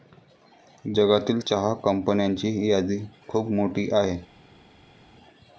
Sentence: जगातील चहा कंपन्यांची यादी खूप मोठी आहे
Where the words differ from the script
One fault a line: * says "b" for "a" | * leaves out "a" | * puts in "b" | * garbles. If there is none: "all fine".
all fine